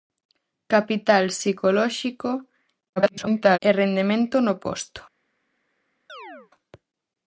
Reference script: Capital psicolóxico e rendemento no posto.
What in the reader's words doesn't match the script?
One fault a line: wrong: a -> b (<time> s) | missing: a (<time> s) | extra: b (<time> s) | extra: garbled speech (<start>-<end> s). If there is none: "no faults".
extra: garbled speech (3.0-3.6 s)